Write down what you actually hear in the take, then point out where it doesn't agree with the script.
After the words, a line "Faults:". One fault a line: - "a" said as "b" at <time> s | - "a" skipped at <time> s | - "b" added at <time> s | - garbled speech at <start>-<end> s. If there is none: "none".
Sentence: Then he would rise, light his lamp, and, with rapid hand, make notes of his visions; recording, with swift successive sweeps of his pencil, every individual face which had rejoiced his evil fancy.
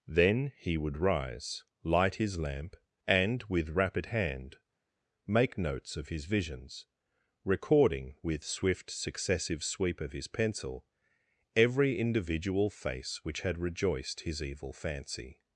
Then he would rise, light his lamp, and, with rapid hand, make notes of his visions; recording, with swift successive sweep of his pencil, every individual face which had rejoiced his evil fancy.
Faults:
- "sweeps" said as "sweep" at 9.6 s